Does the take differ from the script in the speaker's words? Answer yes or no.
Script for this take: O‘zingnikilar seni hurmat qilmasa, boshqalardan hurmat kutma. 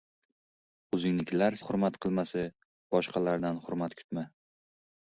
yes